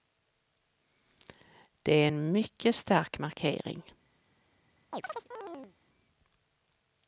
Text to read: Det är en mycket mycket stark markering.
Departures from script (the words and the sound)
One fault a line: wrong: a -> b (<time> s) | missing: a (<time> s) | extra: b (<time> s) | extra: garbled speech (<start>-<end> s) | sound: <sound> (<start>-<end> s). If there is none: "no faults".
missing: mycket (2.8 s)
sound: chirp (4.9-5.8 s)